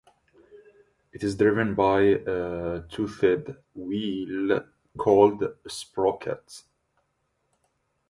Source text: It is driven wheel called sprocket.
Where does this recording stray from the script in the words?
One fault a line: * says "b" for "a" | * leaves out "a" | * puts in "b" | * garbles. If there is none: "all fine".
* puts in "by a toothed"
* puts in "a"